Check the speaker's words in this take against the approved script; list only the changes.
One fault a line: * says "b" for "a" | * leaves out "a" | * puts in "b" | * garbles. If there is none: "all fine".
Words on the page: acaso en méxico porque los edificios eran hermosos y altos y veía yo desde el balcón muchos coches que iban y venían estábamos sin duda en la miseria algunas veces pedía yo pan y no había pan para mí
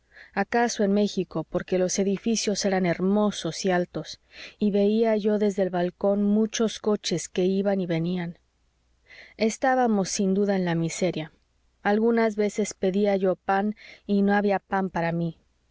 all fine